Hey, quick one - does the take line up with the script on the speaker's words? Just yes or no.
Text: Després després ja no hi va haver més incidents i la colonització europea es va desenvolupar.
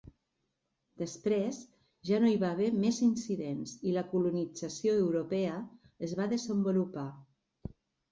no